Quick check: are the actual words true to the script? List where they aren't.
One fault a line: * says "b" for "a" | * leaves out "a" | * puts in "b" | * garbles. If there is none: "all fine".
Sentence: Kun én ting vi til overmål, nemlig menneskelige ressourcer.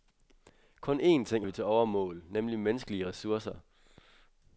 all fine